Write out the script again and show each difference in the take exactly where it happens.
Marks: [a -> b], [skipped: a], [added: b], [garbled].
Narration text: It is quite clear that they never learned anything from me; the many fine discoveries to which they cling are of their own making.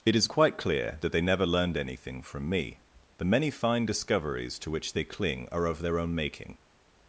It is quite clear that they never learned anything from me; the many fine discoveries to which they cling are of their own making.